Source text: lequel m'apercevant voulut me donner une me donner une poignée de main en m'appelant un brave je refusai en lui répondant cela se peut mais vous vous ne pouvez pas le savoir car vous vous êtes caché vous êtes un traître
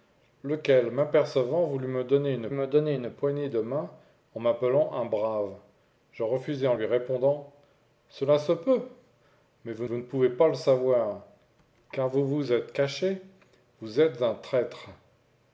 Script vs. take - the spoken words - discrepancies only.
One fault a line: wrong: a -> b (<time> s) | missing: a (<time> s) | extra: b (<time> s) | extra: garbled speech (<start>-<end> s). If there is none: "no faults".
no faults